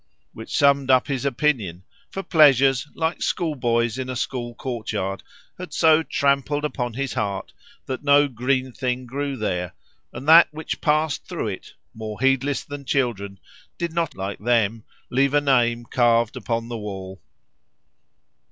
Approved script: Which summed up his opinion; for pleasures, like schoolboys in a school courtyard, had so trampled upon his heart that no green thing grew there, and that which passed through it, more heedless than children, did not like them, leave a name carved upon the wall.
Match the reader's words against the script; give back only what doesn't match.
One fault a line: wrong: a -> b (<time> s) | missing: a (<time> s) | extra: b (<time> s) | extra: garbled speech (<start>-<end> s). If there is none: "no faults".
no faults